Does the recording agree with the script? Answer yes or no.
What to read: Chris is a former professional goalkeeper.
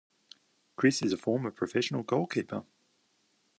yes